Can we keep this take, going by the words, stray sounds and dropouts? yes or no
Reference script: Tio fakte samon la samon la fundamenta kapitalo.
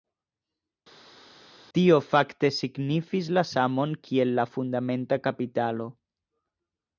no